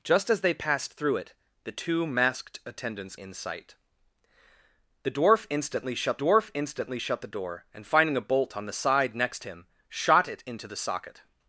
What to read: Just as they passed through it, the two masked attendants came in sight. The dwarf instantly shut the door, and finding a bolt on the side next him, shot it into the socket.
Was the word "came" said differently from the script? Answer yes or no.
yes